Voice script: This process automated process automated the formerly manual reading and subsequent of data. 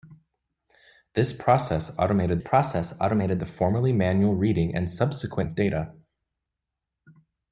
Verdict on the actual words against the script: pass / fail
pass